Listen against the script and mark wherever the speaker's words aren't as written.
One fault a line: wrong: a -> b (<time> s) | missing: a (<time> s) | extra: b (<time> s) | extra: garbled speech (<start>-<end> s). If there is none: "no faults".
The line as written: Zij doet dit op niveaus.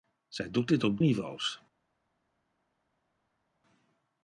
no faults